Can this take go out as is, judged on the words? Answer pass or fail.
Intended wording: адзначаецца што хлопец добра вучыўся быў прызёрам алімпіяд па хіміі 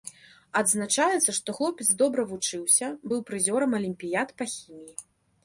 pass